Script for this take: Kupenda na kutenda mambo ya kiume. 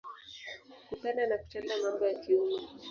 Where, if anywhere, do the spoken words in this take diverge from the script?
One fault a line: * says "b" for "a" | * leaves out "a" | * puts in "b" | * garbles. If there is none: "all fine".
all fine